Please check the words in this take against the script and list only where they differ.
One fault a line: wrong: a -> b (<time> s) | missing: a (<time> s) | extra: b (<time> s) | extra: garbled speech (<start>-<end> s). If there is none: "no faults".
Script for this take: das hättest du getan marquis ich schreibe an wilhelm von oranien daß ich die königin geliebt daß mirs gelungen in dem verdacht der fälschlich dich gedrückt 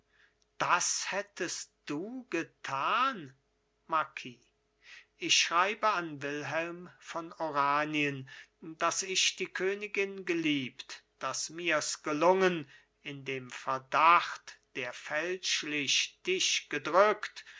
no faults